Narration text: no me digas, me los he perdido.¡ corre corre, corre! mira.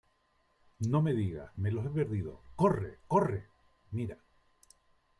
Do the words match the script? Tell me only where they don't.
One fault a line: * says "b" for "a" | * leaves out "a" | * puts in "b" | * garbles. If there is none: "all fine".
* leaves out "corre"